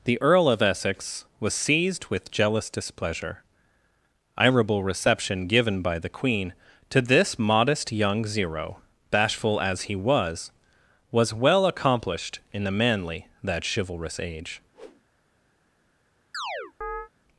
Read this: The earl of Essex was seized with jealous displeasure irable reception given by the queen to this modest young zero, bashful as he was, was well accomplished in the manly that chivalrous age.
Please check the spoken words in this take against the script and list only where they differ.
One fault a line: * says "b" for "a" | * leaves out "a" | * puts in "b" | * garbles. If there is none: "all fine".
all fine